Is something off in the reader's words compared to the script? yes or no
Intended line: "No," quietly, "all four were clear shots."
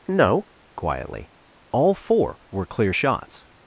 no